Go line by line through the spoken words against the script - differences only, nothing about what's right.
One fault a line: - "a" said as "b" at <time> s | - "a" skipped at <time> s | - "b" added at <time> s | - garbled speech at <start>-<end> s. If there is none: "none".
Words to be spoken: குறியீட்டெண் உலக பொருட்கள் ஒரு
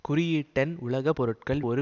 none